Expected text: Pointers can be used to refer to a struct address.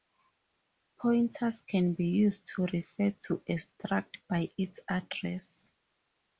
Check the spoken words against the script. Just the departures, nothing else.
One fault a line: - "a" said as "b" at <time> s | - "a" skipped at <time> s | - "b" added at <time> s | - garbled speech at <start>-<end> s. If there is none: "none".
- "by its" added at 4.3 s